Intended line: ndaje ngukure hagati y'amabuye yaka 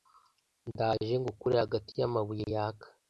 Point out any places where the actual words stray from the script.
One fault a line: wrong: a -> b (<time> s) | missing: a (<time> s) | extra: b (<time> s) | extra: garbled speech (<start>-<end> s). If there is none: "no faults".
no faults